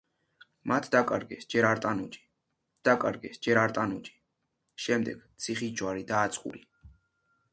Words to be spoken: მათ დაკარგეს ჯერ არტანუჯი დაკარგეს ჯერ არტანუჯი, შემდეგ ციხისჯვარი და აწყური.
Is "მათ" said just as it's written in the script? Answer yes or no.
yes